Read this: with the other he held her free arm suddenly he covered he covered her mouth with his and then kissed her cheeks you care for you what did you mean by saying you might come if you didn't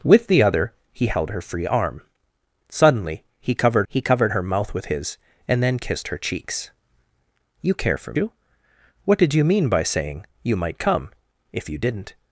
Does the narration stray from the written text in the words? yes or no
no